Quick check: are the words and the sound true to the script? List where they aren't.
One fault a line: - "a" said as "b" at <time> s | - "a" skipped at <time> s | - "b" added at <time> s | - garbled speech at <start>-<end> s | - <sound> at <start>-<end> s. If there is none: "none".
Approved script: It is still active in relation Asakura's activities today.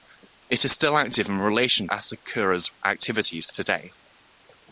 none